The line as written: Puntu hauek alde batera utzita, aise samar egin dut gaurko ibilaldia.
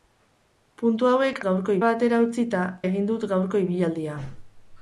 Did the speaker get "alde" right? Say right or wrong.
wrong